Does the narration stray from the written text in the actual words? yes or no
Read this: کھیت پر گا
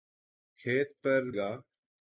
no